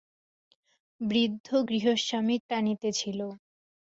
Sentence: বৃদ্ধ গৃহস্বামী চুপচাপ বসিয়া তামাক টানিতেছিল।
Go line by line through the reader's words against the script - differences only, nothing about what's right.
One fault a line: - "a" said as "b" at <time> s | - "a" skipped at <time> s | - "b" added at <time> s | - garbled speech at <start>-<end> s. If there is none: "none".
- "চুপচাপ বসিয়া তামাক" skipped at 2.4 s